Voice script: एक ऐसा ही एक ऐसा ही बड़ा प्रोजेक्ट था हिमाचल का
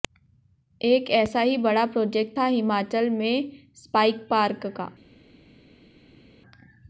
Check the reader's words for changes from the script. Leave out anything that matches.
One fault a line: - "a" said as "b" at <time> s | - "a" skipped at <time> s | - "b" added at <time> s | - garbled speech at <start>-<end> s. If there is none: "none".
- "एक ऐसा ही" skipped at 1.6 s
- "में स्पाइस पार्क" added at 3.1 s